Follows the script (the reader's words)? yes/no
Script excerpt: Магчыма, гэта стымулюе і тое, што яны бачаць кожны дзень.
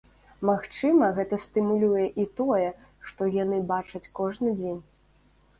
yes